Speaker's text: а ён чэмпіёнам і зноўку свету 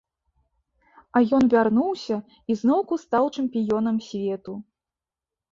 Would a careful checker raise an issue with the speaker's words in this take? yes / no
yes